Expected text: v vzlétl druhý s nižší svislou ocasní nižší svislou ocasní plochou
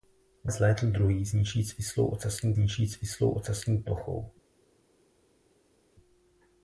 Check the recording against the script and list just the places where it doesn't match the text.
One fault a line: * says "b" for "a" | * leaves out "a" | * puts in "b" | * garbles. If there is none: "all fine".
all fine